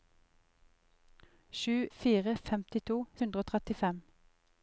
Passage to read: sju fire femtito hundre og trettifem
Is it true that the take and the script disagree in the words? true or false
false